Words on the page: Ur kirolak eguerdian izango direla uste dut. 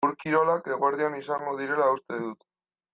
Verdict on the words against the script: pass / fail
pass